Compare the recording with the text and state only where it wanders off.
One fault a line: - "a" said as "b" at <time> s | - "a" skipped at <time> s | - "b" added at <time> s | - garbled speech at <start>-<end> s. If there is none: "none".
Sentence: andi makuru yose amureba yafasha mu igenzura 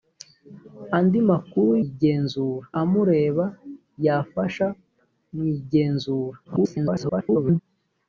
- "yose" said as "igenzura" at 1.8 s
- garbled speech at 6.4-7.6 s